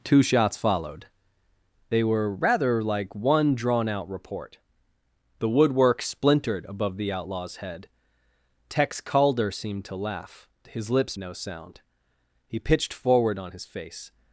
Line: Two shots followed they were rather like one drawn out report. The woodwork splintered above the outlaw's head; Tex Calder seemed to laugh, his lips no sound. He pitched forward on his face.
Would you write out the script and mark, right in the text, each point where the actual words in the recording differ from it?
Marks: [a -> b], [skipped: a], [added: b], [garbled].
Two shots followed they were rather like one drawn out report. The woodwork splintered above the outlaw's head; Tex Calder seemed to laugh, his lips no sound. He pitched forward on his face.